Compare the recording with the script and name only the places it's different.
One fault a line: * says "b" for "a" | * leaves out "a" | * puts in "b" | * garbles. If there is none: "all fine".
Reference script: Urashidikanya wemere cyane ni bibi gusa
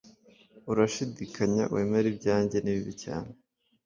* says "ibyanjye" for "cyane"
* says "cyane" for "gusa"